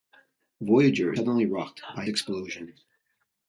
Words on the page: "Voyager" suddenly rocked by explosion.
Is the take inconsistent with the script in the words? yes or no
no